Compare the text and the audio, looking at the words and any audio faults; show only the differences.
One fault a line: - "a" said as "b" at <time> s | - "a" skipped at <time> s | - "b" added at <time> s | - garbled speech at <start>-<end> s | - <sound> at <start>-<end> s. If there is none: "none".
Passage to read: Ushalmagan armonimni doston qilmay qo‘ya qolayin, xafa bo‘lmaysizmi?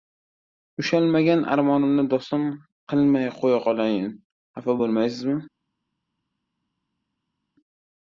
none